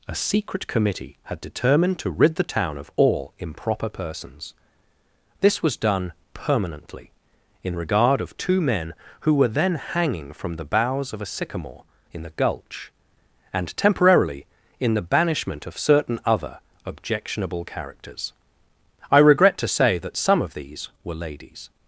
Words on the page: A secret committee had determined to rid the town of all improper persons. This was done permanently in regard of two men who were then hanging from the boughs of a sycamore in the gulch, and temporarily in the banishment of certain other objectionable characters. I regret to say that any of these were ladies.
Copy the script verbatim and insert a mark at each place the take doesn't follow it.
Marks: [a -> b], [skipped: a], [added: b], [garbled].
A secret committee had determined to rid the town of all improper persons. This was done permanently in regard of two men who were then hanging from the boughs of a sycamore in the gulch, and temporarily in the banishment of certain other objectionable characters. I regret to say that [any -> some] of these were ladies.